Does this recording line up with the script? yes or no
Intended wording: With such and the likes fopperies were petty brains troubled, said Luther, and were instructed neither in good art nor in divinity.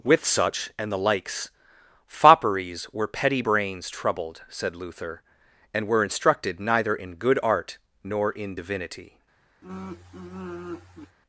yes